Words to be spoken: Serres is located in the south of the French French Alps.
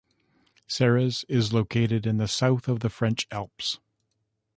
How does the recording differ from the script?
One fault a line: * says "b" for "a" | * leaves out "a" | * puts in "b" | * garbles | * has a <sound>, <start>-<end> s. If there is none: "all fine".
* leaves out "French"